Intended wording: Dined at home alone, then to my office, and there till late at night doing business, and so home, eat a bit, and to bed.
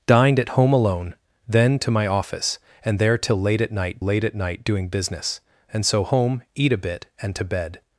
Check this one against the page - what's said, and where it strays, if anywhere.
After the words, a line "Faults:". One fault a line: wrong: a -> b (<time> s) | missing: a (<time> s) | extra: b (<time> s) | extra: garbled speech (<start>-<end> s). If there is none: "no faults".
Dined at home alone, then to my office, and there till late at night late at night doing business, and so home, eat a bit, and to bed.
Faults:
extra: late at night (4.0 s)